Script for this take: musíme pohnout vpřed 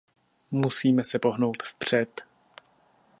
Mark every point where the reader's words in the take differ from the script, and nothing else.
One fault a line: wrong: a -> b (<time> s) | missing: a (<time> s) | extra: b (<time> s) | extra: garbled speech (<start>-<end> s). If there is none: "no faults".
extra: se (1.0 s)